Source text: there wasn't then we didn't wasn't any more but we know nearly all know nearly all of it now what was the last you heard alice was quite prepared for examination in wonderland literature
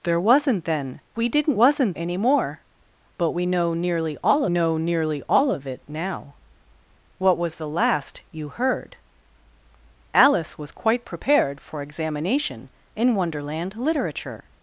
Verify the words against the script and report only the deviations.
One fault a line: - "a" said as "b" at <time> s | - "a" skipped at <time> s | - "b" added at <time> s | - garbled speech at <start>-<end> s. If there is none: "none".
none